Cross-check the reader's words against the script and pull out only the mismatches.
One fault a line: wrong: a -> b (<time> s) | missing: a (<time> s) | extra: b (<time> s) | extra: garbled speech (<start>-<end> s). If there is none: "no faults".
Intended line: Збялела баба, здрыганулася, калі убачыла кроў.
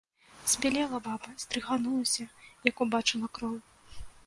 wrong: калі -> як (2.7 s)